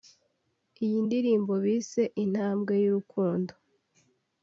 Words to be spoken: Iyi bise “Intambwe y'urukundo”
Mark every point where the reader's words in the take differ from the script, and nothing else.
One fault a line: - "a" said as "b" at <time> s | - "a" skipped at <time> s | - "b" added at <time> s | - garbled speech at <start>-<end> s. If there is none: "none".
- "ndirimbo" added at 1.1 s